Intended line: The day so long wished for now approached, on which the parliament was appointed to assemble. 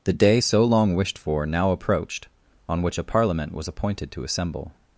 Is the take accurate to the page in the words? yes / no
no